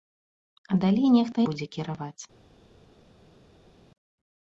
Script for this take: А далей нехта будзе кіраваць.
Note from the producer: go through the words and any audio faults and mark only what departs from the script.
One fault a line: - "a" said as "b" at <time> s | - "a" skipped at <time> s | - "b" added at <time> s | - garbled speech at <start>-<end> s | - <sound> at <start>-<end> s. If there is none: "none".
none